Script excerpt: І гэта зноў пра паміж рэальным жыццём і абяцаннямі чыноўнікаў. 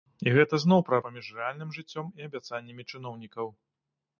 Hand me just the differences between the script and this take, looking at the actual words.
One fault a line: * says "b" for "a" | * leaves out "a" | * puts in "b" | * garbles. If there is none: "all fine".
all fine